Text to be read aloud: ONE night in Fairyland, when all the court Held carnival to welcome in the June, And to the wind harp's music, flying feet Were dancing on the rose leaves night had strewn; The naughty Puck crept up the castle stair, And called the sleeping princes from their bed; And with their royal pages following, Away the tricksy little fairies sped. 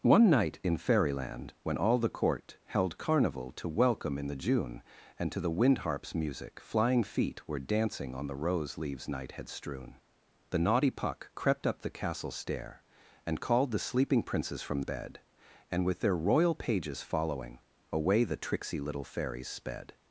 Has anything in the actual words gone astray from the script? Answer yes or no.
yes